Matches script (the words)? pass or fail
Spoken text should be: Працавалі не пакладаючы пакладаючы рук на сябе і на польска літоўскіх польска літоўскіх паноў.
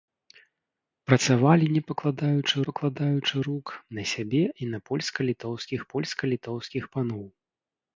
pass